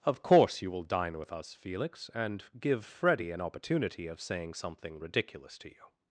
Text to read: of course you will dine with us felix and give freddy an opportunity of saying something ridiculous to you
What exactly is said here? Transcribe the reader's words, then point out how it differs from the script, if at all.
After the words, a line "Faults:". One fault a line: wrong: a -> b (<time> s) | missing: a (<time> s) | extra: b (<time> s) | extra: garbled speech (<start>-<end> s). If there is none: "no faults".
of course you will dine with us felix and give freddy an opportunity of saying something ridiculous to you
Faults:
no faults